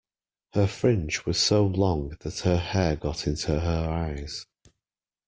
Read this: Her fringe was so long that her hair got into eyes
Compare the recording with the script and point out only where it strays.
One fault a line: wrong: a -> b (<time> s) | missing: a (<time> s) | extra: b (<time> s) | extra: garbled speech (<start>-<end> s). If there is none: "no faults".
extra: her (3.6 s)